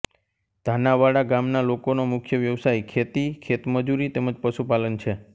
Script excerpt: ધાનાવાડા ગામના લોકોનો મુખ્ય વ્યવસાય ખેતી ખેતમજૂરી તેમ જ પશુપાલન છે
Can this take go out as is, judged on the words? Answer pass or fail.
pass